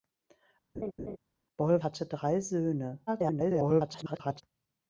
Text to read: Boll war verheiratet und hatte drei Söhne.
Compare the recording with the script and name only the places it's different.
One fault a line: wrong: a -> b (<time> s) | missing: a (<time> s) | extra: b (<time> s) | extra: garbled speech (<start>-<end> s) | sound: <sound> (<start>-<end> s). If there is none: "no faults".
sound: laugh (0.7-1.2 s)
missing: war verheiratet und (1.8 s)
extra: garbled speech (3.1-4.4 s)